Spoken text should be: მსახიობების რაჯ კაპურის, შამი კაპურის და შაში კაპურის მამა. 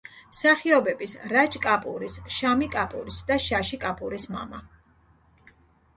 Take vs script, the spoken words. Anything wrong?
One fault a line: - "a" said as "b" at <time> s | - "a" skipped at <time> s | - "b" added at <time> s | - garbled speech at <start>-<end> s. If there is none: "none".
none